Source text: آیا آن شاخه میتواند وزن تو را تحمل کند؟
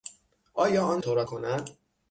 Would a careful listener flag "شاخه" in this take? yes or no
yes